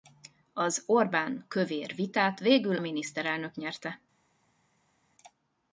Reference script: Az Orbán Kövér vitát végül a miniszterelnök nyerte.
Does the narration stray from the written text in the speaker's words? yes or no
yes